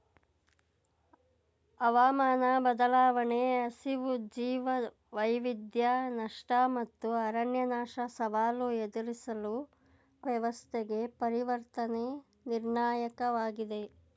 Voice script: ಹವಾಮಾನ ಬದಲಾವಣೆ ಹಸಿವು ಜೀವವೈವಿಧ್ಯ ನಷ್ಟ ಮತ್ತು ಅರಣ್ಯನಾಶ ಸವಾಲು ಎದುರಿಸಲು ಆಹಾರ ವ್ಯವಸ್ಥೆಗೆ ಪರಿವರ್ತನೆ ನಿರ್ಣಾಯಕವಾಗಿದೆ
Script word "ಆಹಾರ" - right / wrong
wrong